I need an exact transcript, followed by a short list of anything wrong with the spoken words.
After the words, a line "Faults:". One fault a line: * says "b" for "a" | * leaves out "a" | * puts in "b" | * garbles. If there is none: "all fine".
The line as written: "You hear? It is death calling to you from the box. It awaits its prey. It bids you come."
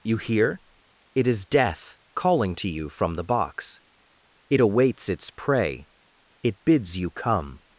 "You hear? It is death calling to you from the box. It awaits its prey. It bids you come."
Faults:
all fine